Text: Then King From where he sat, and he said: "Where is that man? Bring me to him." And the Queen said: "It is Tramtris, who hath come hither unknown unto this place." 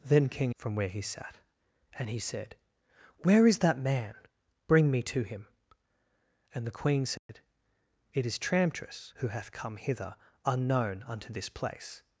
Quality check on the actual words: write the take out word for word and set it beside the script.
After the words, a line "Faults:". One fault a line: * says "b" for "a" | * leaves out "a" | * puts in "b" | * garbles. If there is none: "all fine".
Then King From where he sat, and he said: "Where is that man? Bring me to him." And the Queen said: "It is Tramtris, who hath come hither unknown unto this place."
Faults:
all fine